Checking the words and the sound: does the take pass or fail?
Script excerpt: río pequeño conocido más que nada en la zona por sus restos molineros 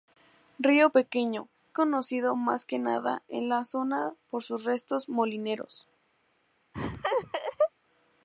fail